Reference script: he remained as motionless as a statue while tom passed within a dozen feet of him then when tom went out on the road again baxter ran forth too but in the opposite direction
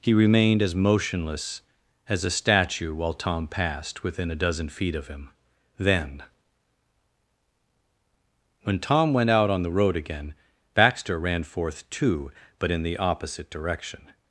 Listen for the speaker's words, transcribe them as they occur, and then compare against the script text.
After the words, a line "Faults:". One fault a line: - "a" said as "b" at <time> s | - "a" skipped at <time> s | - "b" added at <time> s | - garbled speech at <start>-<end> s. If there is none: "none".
he remained as motionless as a statue while tom passed within a dozen feet of him then when tom went out on the road again baxter ran forth too but in the opposite direction
Faults:
none